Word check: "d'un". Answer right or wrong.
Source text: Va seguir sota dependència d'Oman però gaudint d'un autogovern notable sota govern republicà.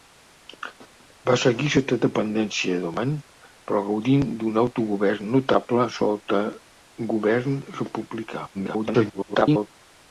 right